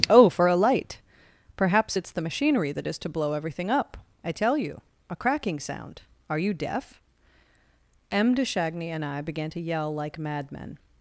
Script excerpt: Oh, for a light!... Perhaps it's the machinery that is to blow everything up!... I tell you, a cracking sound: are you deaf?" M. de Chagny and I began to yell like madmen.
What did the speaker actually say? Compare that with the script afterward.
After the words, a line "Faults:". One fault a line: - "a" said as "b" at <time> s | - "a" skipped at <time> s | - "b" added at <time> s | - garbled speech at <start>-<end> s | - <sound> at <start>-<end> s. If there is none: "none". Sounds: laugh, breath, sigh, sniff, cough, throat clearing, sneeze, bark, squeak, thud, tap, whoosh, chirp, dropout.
Oh, for a light!... Perhaps it's the machinery that is to blow everything up!... I tell you, a cracking sound: are you deaf?" M. de Chagny and I began to yell like madmen.
Faults:
none